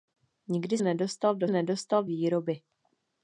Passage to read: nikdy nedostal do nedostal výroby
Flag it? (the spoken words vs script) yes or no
no